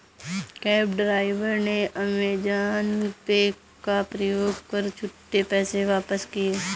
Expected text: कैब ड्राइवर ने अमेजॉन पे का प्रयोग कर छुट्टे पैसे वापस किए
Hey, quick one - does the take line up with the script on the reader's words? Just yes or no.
yes